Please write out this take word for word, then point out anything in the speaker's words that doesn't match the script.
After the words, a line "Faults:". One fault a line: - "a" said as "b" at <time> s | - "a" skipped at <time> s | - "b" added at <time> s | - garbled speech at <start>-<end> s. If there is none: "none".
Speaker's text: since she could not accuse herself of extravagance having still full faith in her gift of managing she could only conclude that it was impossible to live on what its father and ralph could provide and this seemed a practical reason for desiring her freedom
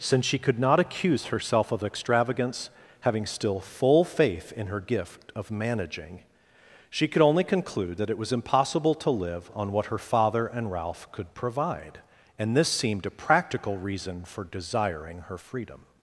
since she could not accuse herself of extravagance having still full faith in her gift of managing she could only conclude that it was impossible to live on what her father and ralph could provide and this seemed a practical reason for desiring her freedom
Faults:
- "its" said as "her" at 9.9 s